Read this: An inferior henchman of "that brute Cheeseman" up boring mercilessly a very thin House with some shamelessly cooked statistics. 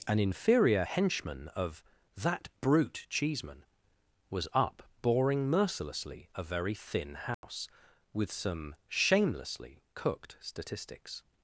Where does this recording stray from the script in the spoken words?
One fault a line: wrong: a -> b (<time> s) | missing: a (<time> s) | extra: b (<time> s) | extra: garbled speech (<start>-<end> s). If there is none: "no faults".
extra: was (4.3 s)